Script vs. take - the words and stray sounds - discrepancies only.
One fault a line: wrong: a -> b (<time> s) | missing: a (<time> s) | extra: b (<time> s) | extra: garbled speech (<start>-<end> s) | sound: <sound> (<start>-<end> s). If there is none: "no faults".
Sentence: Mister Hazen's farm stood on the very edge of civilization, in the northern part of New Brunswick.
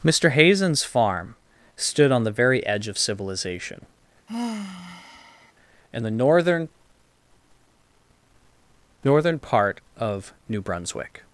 sound: sigh (4.3-5.5 s)
extra: northern (9.0 s)